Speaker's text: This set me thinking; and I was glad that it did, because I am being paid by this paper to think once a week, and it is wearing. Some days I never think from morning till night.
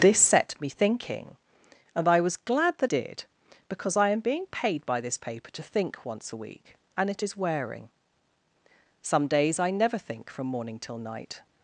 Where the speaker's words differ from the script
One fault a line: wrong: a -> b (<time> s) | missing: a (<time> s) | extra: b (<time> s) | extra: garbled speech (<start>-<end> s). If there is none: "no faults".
missing: it (2.9 s)